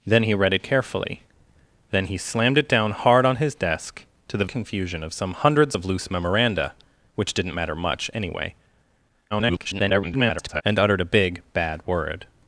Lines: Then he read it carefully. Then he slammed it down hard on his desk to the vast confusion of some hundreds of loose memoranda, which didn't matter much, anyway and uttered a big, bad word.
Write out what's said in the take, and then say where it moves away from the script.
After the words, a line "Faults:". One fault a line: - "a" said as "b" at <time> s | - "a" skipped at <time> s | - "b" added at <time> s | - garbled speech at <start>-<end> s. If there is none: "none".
Then he read it carefully. Then he slammed it down hard on his desk to the confusion of some hundreds of loose memoranda, which didn't matter much, anyway [garbled] and uttered a big, bad word.
Faults:
- "vast" skipped at 4.5 s
- garbled speech at 9.3-10.6 s